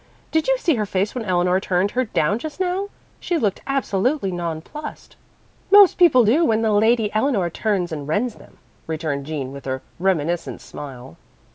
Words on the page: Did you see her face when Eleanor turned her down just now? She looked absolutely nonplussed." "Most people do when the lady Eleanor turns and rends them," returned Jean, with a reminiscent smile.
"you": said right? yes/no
yes